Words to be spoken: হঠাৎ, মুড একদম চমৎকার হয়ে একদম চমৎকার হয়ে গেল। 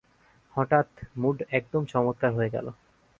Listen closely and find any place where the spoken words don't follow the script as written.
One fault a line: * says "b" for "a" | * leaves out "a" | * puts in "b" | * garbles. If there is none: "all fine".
* leaves out "একদম চমৎকার হয়ে"